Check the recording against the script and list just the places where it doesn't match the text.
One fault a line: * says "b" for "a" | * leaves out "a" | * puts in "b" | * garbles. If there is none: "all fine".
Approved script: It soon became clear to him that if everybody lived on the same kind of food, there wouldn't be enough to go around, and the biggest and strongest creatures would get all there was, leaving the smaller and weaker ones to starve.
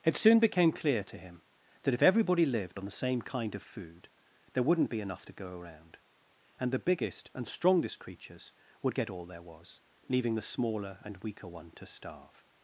* says "one" for "ones"